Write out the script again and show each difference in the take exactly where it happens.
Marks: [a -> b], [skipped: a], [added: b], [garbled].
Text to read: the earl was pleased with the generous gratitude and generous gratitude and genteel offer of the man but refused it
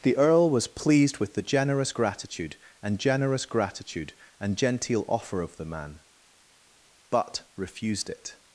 the earl was pleased with the generous gratitude and generous gratitude and genteel offer of the man but refused it